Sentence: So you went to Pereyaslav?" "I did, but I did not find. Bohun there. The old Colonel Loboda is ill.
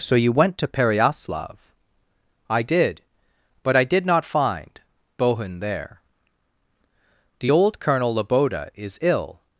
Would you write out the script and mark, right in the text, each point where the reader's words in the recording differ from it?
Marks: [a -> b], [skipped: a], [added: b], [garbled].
So you went to Pereyaslav?" "I did, but I did not find. Bohun there. The old Colonel Loboda is ill.